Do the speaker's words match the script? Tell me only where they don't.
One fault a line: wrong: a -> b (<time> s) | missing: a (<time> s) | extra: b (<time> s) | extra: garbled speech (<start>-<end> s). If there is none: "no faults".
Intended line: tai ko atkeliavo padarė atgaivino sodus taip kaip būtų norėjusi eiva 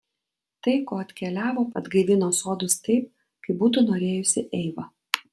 missing: padarė (1.6 s)